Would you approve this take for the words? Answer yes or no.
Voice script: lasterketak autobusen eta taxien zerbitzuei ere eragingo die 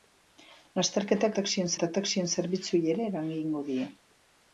no